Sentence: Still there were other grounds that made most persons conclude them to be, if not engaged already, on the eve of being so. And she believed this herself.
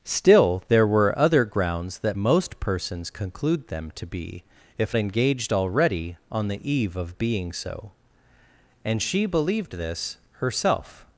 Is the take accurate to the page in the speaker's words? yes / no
no